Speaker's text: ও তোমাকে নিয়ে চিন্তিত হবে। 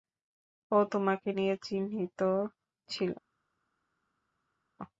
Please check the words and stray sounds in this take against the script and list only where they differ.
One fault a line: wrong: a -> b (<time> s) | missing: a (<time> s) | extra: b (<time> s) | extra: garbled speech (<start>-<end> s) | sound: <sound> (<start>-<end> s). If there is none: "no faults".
wrong: হবে -> ছিল (2.9 s)